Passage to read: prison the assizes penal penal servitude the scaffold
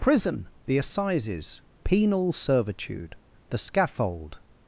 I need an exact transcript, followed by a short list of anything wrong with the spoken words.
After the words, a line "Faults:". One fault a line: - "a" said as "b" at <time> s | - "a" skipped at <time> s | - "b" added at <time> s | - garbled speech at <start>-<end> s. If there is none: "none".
prison the assizes penal servitude the scaffold
Faults:
- "penal" skipped at 2.3 s